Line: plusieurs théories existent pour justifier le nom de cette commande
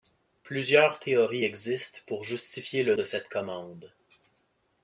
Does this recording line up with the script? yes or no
no